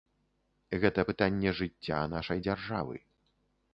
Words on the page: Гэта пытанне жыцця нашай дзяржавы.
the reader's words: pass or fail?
pass